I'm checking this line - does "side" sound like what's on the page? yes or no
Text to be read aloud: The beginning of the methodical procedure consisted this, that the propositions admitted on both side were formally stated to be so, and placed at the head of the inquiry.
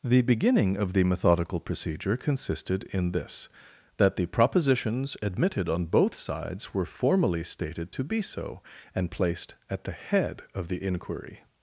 no